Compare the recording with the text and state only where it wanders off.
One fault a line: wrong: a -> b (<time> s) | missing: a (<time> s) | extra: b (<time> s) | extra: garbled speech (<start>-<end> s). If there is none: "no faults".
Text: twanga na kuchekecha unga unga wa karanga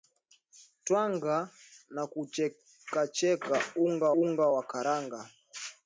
no faults